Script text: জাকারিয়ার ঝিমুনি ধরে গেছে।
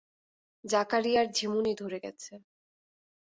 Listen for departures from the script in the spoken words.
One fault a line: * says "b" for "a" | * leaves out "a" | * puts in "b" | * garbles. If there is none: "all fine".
all fine